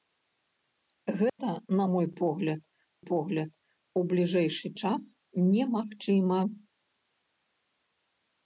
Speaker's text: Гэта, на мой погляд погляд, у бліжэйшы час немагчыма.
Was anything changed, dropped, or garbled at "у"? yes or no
no